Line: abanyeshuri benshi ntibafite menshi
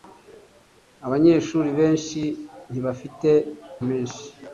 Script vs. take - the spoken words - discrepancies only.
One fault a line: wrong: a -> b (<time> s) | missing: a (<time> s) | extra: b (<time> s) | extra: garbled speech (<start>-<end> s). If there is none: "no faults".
no faults